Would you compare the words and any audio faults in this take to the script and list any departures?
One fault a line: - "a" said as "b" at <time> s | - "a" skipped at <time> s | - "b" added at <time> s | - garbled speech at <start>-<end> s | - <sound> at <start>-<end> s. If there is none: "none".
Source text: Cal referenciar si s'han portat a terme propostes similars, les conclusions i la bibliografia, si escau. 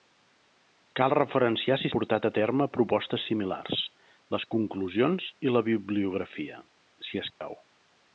- "s'han" skipped at 1.9 s
- dropout at 7.3-7.4 s